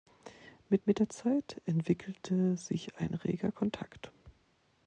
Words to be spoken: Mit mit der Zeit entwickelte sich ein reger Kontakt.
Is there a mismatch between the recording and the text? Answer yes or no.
no